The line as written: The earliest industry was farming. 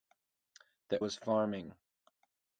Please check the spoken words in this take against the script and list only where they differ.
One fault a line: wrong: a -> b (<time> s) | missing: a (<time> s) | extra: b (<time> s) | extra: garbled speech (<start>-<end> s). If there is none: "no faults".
missing: earliest industry (1.0 s)